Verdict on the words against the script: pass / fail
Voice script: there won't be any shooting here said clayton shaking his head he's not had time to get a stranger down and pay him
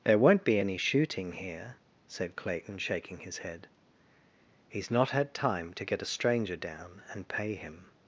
pass